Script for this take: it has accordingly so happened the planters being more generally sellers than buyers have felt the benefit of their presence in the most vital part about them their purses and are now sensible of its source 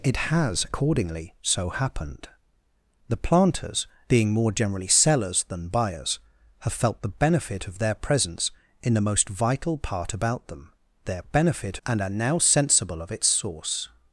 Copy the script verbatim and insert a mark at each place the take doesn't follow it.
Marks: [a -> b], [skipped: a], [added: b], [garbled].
it has accordingly so happened the planters being more generally sellers than buyers have felt the benefit of their presence in the most vital part about them their [purses -> benefit] and are now sensible of its source